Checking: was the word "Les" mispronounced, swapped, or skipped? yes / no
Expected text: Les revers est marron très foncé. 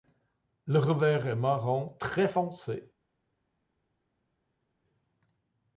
yes